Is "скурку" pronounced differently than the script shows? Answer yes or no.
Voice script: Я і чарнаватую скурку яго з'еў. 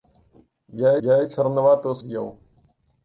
yes